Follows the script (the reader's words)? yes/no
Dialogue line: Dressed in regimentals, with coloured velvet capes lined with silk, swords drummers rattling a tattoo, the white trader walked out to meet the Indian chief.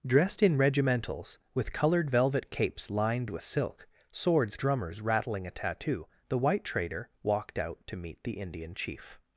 yes